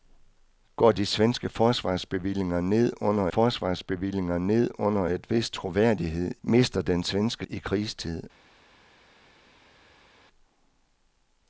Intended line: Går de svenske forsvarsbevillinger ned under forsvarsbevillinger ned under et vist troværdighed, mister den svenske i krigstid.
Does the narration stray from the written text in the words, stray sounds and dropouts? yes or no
no